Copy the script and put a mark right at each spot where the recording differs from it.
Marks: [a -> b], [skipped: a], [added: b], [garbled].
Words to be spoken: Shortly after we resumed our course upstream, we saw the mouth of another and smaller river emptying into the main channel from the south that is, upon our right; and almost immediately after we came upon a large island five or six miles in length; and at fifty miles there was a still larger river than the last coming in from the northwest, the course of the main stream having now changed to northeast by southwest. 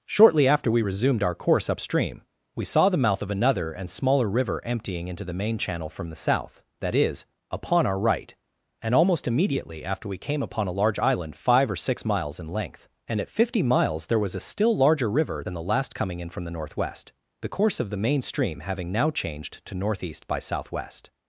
Shortly after we resumed our course upstream, we saw the mouth of another and smaller river emptying into the main channel from the south that is, upon our right; and almost immediately after we came upon a large island five or six miles in length; and at fifty miles there was a still larger river than the last coming in from the northwest, the course of the main stream having now changed to northeast by southwest.